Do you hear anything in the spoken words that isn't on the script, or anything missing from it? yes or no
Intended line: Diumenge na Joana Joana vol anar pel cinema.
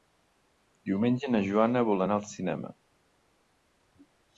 yes